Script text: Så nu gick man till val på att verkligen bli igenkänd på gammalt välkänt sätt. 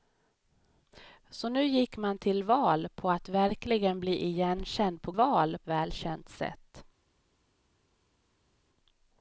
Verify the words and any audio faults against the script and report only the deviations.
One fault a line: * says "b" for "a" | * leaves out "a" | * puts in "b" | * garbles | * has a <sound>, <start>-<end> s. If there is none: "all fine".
* says "val" for "gammalt"